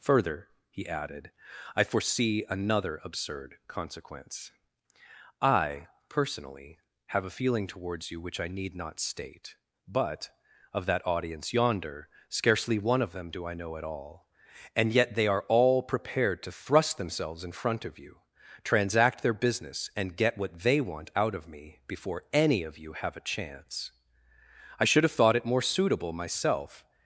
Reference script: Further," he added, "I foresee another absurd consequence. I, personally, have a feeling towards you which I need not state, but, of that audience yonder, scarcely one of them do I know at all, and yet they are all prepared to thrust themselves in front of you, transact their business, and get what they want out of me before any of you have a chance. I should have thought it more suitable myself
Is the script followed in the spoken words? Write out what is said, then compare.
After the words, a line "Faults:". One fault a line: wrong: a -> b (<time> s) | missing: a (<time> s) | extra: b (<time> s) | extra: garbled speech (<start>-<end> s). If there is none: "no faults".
Further," he added, "I foresee another absurd consequence. I, personally, have a feeling towards you which I need not state, but, of that audience yonder, scarcely one of them do I know at all, and yet they are all prepared to thrust themselves in front of you, transact their business, and get what they want out of me before any of you have a chance. I should have thought it more suitable myself
Faults:
no faults